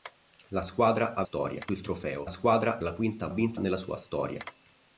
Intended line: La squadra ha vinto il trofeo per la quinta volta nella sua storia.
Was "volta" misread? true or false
true